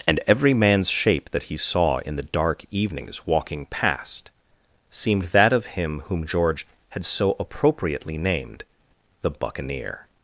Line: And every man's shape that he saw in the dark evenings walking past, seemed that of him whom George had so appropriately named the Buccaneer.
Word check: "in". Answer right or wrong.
right